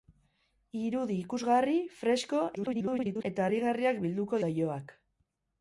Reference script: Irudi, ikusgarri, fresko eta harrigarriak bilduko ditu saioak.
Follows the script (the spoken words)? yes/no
no